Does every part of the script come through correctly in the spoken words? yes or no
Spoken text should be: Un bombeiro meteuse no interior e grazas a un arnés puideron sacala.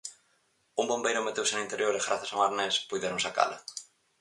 yes